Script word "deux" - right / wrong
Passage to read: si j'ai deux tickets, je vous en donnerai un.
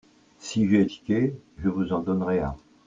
wrong